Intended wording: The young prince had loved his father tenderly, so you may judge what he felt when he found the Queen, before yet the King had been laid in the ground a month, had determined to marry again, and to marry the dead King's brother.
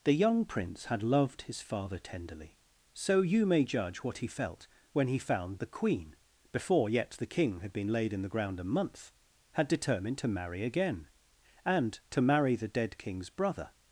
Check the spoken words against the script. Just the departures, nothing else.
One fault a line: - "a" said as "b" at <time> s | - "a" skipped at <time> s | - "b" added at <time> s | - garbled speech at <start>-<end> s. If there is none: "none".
none